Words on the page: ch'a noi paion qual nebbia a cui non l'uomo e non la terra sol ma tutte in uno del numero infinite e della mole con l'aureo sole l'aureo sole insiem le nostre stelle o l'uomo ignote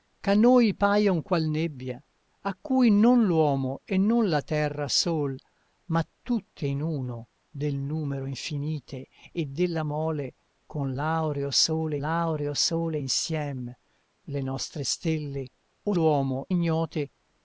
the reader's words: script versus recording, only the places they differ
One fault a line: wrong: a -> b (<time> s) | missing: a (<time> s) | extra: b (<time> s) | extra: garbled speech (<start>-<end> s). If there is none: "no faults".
no faults